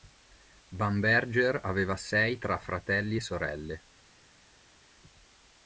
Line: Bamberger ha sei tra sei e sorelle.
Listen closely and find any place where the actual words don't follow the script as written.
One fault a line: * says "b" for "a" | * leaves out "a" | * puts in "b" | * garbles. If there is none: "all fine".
* says "aveva" for "ha"
* says "fratelli" for "sei"